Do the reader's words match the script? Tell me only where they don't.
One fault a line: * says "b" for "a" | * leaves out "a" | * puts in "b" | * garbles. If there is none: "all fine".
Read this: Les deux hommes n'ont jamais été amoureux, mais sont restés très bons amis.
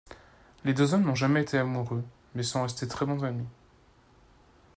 all fine